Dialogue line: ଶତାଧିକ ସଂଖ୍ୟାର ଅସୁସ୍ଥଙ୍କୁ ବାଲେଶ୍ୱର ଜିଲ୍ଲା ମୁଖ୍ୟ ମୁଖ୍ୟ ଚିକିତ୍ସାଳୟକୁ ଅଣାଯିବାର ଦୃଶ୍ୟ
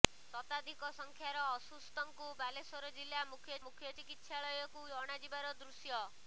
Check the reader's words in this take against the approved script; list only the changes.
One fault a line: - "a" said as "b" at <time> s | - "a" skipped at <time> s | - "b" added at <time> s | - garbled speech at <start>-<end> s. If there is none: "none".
none